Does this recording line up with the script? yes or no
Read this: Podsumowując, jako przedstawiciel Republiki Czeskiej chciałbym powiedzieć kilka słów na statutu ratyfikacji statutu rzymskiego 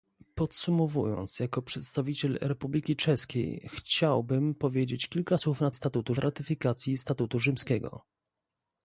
yes